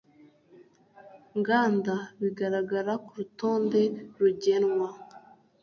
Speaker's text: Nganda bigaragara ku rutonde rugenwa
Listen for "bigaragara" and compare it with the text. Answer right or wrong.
right